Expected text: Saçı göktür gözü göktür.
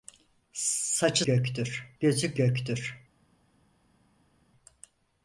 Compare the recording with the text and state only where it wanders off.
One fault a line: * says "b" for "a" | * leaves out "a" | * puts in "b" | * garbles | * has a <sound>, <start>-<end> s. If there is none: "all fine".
all fine